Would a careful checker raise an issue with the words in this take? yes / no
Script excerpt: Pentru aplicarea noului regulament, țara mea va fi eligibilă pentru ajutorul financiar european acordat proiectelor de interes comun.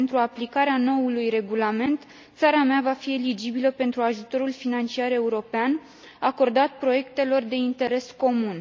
no